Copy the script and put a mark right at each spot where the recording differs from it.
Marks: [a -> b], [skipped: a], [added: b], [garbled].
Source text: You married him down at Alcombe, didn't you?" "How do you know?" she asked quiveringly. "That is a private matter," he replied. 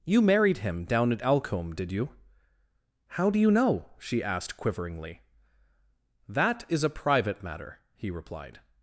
You married him down at Alcombe, [didn't -> did] you?" "How do you know?" she asked quiveringly. "That is a private matter," he replied.